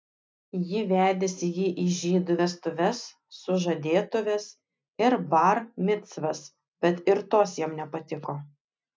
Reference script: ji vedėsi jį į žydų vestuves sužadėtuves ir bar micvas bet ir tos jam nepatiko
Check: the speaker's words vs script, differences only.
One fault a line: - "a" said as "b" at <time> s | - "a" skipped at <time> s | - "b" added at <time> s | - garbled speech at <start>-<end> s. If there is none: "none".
none